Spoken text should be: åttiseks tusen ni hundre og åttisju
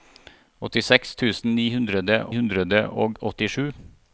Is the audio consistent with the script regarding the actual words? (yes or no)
no